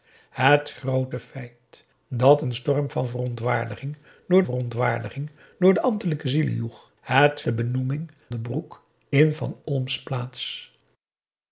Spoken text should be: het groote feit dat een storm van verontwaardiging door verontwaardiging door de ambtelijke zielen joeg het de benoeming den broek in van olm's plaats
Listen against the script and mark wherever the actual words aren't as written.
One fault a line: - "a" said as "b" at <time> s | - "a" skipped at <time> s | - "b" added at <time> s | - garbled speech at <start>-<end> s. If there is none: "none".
none